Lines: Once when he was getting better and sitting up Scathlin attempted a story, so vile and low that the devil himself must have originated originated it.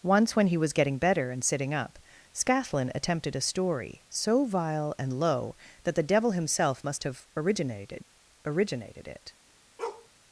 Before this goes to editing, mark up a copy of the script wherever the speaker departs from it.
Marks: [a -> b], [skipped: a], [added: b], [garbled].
Once when he was getting better and sitting up Scathlin attempted a story, so vile and low that the devil himself must have originated originated it.